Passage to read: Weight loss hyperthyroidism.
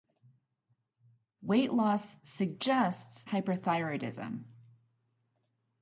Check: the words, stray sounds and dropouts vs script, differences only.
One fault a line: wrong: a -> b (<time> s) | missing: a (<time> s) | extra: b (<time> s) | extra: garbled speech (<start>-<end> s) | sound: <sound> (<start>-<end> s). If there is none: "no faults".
extra: suggests (2.2 s)